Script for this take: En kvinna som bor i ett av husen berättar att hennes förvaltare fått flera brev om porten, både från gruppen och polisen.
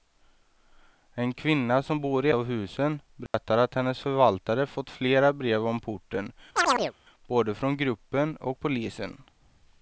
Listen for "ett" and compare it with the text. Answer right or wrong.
wrong